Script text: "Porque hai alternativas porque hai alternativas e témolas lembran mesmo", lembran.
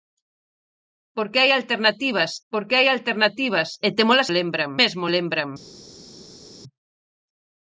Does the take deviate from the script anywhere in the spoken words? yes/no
no